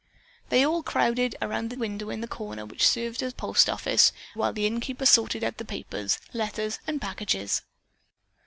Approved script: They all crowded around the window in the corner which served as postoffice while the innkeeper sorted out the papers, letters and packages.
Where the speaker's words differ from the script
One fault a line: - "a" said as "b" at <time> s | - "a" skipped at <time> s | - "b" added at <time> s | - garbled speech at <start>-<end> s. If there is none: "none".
none